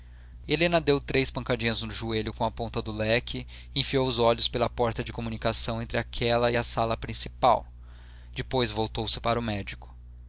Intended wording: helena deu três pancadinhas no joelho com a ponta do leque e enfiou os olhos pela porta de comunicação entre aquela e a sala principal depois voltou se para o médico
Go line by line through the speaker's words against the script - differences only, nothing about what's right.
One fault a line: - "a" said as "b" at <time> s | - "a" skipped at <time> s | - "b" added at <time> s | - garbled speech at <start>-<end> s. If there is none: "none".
none